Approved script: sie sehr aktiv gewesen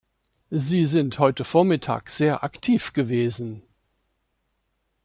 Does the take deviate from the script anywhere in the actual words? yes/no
yes